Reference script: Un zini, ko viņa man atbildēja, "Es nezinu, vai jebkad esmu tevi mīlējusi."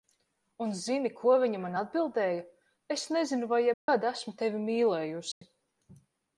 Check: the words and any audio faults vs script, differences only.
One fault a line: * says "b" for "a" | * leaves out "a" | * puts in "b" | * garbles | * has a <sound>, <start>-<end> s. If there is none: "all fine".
* has a dropout, 3.7-3.9 s
* has a dropout, 5.3-5.4 s